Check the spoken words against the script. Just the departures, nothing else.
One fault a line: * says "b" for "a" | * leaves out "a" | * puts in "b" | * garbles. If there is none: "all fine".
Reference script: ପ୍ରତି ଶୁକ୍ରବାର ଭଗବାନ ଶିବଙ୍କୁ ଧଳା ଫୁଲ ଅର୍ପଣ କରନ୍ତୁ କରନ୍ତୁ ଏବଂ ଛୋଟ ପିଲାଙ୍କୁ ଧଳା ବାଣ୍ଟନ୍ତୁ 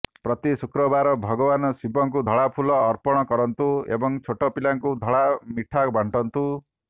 * leaves out "କରନ୍ତୁ"
* puts in "ମିଠା"